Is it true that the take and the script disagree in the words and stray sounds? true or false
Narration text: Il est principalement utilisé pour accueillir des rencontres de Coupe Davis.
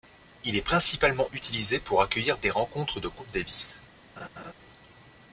true